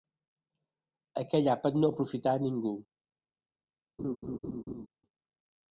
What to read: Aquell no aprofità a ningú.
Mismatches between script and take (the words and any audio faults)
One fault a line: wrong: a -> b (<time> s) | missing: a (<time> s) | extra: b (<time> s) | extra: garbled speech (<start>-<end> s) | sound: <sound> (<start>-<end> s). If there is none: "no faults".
extra: àpat (1.6 s)
sound: laugh (4.0-4.9 s)